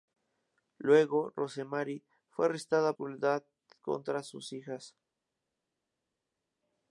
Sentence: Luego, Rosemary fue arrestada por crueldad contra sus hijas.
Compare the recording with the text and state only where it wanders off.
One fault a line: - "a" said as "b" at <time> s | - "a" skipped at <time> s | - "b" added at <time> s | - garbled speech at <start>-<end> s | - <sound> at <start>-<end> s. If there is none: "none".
- "por" skipped at 2.9 s